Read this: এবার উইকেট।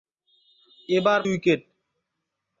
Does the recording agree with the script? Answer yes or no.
yes